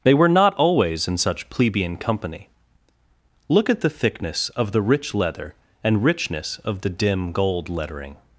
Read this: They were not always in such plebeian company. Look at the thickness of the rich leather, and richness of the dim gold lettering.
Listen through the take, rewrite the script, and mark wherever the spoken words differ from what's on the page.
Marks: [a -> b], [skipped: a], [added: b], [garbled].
They were not always in such plebeian company. Look at the thickness of the rich leather, and richness of the dim gold lettering.